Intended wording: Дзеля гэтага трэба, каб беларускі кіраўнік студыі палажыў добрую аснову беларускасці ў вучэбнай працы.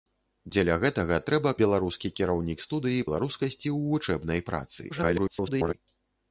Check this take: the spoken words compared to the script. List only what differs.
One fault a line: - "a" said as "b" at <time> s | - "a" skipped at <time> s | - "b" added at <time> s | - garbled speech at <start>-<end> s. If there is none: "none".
- "каб" skipped at 1.5 s
- "палажыў добрую аснову" skipped at 3.0 s
- garbled speech at 4.9-5.7 s